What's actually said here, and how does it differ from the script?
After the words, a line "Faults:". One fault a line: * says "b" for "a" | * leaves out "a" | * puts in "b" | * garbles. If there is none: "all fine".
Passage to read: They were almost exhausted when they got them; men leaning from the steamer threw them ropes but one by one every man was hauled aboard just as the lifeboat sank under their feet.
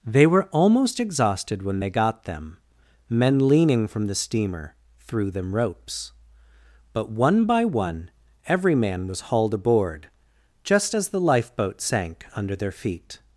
They were almost exhausted when they got them; men leaning from the steamer threw them ropes but one by one every man was hauled aboard just as the lifeboat sank under their feet.
Faults:
all fine